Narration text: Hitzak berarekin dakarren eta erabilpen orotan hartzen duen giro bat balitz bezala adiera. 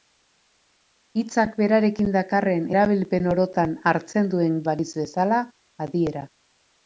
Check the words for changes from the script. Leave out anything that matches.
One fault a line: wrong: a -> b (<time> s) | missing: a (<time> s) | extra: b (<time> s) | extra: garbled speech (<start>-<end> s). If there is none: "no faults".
missing: eta (2.6 s)
missing: giro bat (4.6 s)